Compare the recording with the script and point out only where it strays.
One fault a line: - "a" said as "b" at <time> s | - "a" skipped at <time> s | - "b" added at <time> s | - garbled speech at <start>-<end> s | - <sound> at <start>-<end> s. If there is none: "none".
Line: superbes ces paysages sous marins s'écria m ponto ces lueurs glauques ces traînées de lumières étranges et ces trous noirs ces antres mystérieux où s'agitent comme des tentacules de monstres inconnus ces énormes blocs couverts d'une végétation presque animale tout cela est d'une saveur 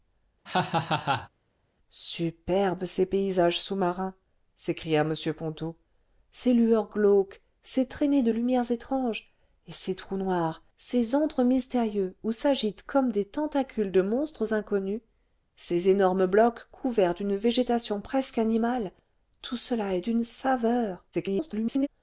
- laugh at 0.5-1.3 s
- garbled speech at 21.1-21.9 s